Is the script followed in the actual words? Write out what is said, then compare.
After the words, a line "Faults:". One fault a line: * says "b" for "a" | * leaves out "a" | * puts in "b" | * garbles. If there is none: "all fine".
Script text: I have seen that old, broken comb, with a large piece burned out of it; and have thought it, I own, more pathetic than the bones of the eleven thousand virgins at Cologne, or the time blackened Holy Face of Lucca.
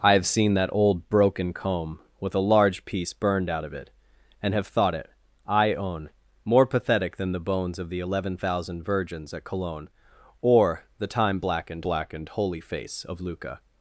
I have seen that old, broken comb, with a large piece burned out of it; and have thought it, I own, more pathetic than the bones of the eleven thousand virgins at Cologne, or the time blackened blackened Holy Face of Lucca.
Faults:
* puts in "blackened"